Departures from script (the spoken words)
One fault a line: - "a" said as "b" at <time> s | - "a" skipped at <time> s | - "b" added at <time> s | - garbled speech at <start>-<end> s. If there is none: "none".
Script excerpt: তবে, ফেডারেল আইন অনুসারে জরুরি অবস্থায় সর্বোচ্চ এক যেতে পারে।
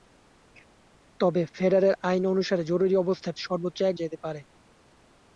none